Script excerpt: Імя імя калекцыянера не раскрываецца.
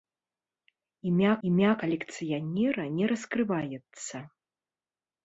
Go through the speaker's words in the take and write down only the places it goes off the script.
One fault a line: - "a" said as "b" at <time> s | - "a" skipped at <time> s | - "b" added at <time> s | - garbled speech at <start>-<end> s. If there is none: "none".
none